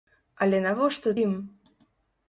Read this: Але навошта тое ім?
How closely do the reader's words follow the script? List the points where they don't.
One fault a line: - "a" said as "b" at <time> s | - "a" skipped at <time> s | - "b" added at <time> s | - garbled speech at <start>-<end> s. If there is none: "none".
- "тое" skipped at 1.1 s